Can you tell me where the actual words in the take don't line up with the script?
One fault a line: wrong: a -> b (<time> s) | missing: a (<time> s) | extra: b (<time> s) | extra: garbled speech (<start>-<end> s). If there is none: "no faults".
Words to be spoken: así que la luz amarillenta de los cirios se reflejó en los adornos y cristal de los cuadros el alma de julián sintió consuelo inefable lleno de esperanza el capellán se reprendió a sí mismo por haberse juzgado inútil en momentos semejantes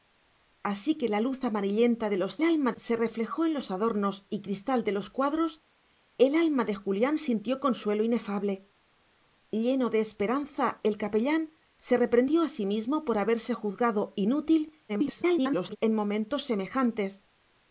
wrong: cirios -> alma (2.4 s)
extra: garbled speech (14.9-15.8 s)